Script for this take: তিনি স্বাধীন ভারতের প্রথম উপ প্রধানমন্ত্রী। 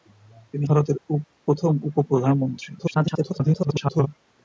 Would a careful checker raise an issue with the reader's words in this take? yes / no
yes